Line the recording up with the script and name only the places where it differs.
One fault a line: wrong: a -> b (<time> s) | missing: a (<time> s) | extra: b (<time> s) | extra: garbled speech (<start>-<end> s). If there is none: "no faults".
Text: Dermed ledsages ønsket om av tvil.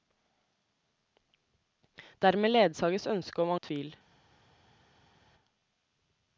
no faults